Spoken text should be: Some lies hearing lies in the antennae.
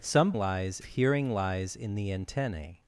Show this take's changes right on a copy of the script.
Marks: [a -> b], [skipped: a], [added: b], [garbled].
Some lies hearing lies in the antennae.